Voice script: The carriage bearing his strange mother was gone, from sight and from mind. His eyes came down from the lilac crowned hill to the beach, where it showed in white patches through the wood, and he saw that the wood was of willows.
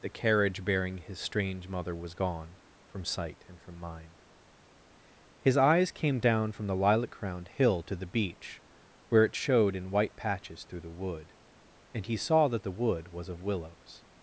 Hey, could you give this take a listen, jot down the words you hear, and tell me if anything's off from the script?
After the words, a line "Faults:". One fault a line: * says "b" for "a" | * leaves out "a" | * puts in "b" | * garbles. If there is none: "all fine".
The carriage bearing his strange mother was gone, from sight and from mind. His eyes came down from the lilac crowned hill to the beach, where it showed in white patches through the wood, and he saw that the wood was of willows.
Faults:
all fine